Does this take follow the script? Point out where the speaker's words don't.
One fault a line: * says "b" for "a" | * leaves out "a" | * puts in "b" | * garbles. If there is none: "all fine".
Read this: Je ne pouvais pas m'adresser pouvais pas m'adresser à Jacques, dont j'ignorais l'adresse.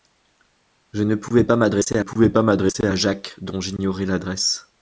all fine